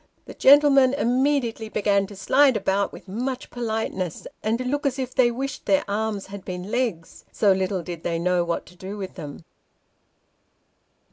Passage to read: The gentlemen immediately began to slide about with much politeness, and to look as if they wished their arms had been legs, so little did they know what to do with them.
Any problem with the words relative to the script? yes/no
no